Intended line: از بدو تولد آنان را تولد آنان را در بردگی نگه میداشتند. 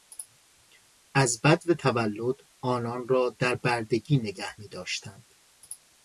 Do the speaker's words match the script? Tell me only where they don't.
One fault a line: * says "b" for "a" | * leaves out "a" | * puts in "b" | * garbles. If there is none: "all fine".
* leaves out "تولد آنان را"